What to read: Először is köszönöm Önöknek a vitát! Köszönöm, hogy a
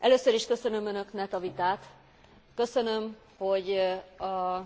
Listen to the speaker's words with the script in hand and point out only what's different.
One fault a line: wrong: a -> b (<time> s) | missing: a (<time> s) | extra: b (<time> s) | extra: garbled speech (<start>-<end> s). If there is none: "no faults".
no faults